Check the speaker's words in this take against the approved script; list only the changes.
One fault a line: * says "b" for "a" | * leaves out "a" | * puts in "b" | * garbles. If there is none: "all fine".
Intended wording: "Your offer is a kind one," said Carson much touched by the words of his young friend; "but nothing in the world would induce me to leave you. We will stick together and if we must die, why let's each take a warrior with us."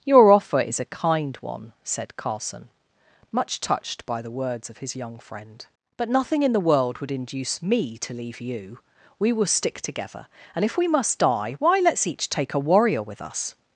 all fine